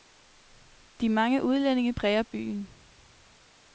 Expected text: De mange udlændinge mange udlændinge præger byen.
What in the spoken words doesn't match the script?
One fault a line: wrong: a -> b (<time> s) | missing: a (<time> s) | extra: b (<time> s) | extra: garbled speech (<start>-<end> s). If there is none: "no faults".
missing: mange udlændinge (1.9 s)